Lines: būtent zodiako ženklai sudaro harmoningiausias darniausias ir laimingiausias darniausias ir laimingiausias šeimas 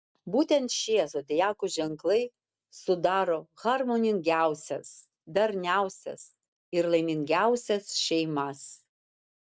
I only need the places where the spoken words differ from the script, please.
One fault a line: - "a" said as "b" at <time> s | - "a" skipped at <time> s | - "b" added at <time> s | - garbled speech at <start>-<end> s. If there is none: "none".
- "šie" added at 0.7 s
- "darniausias ir laimingiausias" skipped at 7.9 s